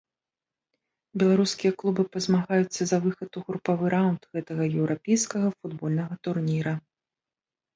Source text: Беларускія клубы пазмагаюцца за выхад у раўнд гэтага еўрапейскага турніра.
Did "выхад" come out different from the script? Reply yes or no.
no